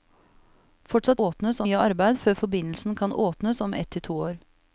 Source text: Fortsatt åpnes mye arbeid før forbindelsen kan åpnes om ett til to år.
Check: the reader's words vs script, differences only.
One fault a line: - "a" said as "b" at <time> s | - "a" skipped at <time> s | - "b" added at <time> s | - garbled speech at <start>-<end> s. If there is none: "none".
none